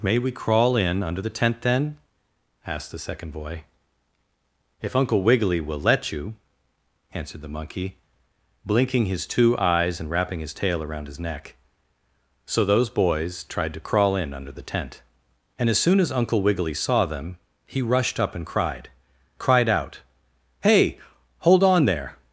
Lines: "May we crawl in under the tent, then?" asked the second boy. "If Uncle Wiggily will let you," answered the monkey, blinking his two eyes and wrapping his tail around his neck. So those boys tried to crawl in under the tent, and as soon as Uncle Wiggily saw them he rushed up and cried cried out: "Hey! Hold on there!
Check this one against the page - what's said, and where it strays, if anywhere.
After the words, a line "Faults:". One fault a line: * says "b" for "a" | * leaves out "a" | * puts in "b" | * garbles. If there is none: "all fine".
"May we crawl in under the tent, then?" asked the second boy. "If Uncle Wiggily will let you," answered the monkey, blinking his two eyes and wrapping his tail around his neck. So those boys tried to crawl in under the tent, and as soon as Uncle Wiggily saw them he rushed up and cried cried out: "Hey! Hold on there!
Faults:
all fine